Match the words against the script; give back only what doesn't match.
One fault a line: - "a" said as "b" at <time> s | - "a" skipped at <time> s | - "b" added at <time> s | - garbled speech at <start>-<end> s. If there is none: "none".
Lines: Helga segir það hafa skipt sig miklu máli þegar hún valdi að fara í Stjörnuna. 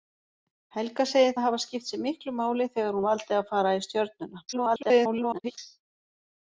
- "hún" skipped at 3.0 s
- garbled speech at 4.5-5.6 s